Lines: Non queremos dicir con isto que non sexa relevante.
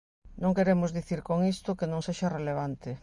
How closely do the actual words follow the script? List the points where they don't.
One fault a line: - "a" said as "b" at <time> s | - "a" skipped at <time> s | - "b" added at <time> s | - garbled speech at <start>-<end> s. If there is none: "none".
none